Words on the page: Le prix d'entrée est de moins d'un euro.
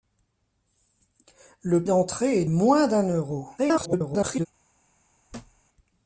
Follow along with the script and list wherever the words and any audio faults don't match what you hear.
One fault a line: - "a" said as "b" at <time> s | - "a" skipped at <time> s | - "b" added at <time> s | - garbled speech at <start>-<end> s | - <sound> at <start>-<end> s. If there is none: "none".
- "prix" skipped at 1.9 s
- "de" skipped at 2.4 s
- garbled speech at 3.6-4.5 s
- thud at 5.3-5.6 s